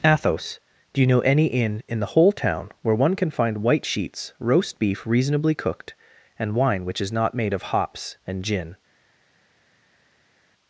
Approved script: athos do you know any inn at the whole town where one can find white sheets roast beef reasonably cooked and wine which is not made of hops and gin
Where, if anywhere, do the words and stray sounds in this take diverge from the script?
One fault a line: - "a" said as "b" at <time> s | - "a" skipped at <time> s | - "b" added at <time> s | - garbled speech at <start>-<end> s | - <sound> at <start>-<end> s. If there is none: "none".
- "at" said as "in" at 1.9 s